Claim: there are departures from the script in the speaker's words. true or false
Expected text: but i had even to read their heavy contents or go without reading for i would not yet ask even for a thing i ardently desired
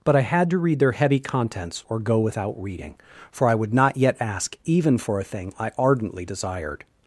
true